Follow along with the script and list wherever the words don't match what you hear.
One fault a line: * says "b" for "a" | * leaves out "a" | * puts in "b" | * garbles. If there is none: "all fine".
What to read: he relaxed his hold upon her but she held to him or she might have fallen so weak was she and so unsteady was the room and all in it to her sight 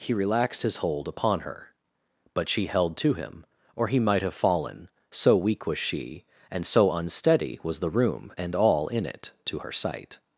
* says "he" for "she"